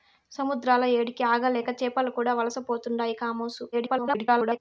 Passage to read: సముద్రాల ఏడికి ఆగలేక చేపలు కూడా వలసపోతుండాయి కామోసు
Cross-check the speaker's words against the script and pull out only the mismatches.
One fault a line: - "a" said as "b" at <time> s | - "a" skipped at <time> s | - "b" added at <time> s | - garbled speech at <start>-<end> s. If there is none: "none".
- garbled speech at 3.7-4.6 s